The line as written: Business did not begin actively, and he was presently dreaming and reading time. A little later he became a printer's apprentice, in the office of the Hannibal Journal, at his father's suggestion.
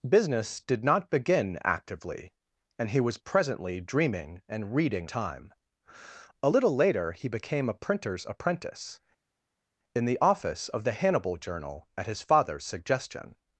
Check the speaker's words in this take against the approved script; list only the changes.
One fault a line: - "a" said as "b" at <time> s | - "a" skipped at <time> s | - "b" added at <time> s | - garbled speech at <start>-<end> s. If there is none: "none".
none